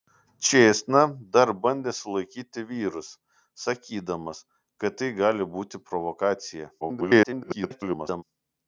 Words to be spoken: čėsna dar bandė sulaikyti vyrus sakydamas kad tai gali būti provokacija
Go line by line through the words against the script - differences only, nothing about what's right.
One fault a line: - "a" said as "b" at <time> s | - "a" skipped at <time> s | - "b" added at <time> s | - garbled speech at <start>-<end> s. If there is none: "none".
- garbled speech at 6.8-8.2 s